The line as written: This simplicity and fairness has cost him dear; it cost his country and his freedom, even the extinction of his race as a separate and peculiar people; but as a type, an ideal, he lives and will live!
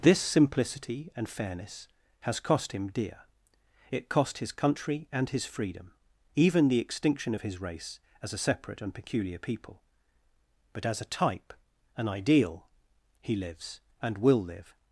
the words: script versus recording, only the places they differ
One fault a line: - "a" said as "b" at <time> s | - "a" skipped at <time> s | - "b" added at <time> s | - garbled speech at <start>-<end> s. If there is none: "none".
none